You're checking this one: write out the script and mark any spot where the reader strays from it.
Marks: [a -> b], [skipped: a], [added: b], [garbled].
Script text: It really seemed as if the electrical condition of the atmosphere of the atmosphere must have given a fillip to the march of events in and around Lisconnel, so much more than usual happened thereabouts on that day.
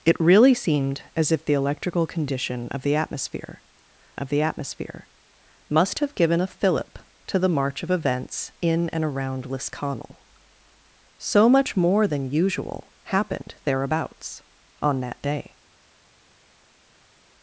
It really seemed as if the electrical condition of the atmosphere of the atmosphere must have given a fillip to the march of events in and around Lisconnel, so much more than usual happened thereabouts on that day.